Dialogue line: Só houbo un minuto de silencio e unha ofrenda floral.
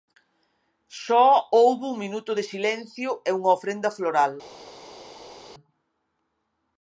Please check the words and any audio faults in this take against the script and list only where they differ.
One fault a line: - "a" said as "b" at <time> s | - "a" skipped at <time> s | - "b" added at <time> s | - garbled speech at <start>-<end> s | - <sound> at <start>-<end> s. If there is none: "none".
none